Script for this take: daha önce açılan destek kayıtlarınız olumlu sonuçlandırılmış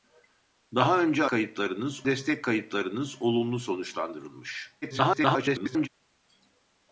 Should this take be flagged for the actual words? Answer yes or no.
yes